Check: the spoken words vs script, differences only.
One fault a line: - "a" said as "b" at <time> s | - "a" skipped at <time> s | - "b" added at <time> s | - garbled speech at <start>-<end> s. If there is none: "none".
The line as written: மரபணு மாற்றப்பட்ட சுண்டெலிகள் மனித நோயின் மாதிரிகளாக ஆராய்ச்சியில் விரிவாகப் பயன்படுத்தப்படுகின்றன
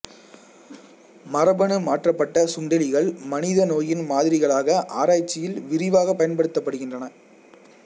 none